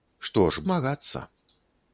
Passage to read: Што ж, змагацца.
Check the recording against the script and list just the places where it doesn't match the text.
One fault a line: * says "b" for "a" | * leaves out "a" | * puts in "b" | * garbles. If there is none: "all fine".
all fine